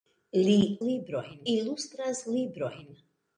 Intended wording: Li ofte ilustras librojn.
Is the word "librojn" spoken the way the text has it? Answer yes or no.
yes